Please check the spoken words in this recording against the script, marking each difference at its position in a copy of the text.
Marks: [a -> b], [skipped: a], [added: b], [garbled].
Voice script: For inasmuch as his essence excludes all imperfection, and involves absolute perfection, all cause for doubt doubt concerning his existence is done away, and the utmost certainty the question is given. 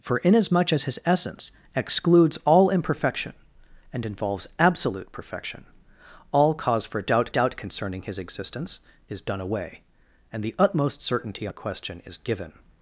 For inasmuch as his essence excludes all imperfection, and involves absolute perfection, all cause for doubt doubt concerning his existence is done away, and the utmost certainty the question is given.